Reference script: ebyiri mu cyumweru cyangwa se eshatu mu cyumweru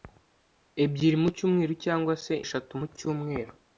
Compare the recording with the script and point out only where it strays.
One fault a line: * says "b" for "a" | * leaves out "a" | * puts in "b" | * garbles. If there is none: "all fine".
all fine